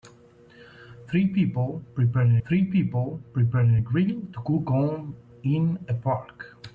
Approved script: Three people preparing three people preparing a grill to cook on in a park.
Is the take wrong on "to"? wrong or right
right